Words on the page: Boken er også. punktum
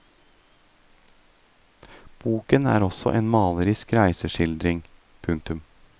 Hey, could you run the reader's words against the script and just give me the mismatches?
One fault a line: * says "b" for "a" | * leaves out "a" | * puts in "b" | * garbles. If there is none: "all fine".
* puts in "en malerisk reiseskildring"